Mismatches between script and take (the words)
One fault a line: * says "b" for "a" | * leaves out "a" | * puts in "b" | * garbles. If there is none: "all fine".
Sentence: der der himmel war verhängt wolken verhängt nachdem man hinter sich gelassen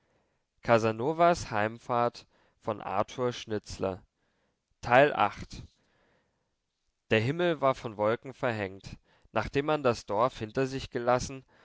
* leaves out "der"
* says "von" for "verhängt"
* puts in "das dorf"